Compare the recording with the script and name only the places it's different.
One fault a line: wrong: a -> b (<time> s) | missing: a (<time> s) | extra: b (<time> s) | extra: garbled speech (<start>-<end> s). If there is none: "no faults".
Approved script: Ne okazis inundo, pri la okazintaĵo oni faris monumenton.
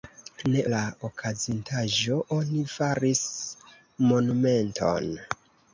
missing: okazis inundo pri (0.6 s)